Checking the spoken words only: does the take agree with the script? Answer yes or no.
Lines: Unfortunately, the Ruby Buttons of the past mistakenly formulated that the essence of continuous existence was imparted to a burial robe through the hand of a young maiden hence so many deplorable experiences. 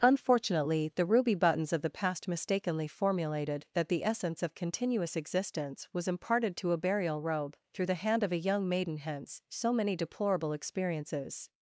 yes